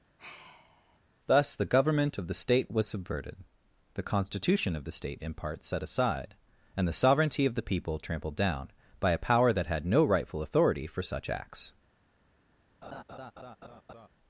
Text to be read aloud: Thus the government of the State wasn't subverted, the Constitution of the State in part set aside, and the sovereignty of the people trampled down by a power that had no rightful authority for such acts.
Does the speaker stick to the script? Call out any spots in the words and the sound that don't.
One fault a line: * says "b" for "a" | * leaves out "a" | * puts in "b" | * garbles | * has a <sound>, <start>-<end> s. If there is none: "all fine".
* has a sigh, 0.2-1.0 s
* says "was" for "wasn't"
* has a laugh, 12.8-14.1 s